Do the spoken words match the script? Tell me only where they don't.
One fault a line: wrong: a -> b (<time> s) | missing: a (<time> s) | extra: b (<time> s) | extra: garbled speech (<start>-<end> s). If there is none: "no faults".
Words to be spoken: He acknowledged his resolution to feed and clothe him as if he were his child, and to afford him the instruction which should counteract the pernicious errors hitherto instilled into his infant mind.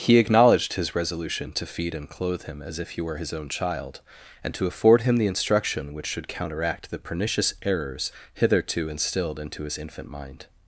extra: own (3.3 s)